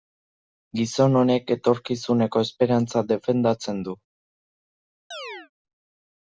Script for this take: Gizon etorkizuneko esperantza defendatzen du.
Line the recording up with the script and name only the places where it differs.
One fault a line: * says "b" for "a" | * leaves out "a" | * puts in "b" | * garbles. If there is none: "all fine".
* puts in "honek"